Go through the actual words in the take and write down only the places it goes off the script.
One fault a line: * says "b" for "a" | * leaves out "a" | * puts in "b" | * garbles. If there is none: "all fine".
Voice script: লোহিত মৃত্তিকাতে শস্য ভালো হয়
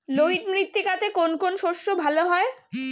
* puts in "কোন কোন"